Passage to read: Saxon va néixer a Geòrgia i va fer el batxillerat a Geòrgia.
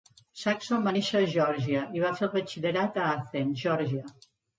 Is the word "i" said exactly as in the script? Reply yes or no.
yes